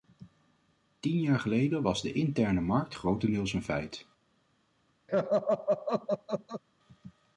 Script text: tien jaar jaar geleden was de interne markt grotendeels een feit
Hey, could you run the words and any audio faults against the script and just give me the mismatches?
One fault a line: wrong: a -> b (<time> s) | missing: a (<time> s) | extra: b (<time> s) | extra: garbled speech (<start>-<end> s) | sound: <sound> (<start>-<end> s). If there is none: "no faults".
missing: jaar (1.4 s)
sound: laugh (5.1-6.6 s)